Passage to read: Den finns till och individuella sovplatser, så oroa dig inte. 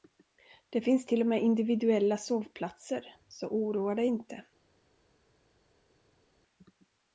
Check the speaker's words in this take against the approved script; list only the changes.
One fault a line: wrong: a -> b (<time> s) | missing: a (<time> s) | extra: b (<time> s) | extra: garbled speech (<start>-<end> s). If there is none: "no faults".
wrong: Den -> Det (0.7 s)
extra: med (1.3 s)